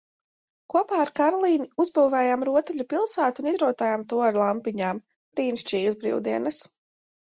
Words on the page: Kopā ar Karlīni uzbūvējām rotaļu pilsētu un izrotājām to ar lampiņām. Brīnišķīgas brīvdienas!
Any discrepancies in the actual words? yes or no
no